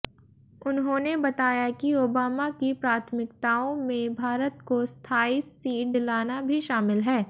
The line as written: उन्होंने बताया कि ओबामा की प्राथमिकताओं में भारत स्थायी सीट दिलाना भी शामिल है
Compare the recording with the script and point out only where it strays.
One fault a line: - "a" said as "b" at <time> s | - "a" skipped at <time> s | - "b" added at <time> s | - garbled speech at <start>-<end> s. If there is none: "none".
- "को" added at 4.7 s